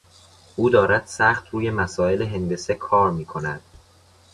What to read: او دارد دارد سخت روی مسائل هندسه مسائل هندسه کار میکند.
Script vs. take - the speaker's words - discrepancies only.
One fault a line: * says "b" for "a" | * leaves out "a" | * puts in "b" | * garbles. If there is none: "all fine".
* leaves out "دارد"
* leaves out "مسائل هندسه"